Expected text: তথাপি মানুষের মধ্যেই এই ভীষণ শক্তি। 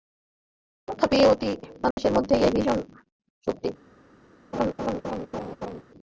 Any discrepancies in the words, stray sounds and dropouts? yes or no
yes